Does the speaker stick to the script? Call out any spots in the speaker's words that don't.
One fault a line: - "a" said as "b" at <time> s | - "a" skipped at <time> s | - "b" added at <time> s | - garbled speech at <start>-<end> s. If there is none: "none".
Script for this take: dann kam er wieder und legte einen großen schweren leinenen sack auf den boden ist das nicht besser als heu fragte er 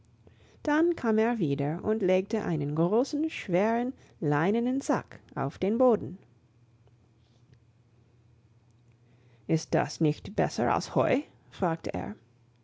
none